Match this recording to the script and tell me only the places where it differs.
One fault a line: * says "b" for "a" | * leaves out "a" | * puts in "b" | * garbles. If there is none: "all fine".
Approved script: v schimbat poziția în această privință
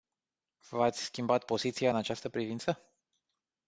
* puts in "ați"